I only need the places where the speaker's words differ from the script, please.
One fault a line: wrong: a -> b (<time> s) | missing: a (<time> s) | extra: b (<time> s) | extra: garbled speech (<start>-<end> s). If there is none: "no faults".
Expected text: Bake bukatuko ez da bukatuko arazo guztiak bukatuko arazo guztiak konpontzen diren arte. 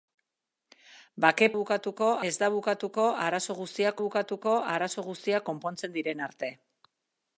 no faults